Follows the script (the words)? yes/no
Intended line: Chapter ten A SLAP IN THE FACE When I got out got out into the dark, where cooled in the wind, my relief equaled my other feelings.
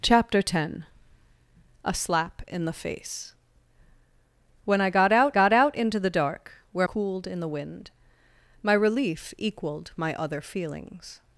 yes